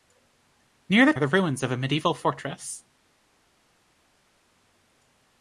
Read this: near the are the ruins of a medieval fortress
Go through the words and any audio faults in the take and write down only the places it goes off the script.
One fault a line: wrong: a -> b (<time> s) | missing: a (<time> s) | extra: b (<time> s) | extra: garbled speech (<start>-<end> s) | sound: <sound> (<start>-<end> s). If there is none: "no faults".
no faults